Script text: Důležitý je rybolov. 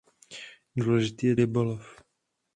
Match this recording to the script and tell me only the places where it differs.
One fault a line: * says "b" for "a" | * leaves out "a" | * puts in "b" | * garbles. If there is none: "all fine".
all fine